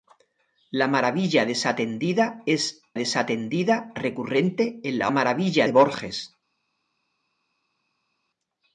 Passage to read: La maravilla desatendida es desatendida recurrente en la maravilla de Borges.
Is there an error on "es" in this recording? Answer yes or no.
no